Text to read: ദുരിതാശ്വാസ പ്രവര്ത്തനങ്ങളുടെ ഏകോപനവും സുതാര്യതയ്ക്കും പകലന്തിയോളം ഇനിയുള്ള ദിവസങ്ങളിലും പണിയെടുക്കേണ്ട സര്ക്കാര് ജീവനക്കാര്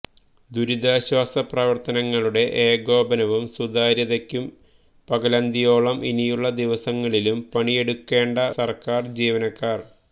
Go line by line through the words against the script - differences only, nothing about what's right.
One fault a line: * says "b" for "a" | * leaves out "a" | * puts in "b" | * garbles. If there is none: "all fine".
all fine